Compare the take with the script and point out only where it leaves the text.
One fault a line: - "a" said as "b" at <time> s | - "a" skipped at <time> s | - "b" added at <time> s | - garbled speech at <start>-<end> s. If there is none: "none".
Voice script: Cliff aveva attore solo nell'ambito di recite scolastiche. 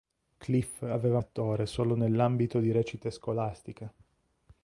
none